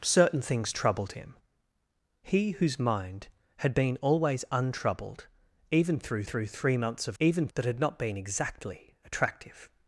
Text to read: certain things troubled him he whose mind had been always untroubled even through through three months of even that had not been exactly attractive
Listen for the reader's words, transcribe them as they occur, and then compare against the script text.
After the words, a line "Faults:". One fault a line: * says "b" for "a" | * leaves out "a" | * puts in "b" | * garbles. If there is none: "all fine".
certain things troubled him he whose mind had been always untroubled even through through three months of even that had not been exactly attractive
Faults:
all fine